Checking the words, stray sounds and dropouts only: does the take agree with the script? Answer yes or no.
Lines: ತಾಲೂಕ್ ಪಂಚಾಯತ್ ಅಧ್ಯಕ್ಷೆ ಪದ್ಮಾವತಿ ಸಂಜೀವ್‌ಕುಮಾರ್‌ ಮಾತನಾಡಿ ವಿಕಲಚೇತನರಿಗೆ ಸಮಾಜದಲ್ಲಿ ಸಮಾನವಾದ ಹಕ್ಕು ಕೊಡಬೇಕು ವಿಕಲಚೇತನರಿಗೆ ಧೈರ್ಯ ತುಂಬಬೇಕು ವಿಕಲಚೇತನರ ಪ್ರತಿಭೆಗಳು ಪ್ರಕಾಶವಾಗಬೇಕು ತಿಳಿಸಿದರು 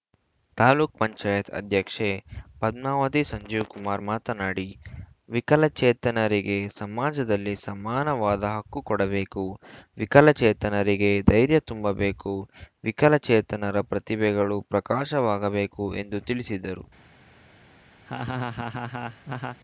no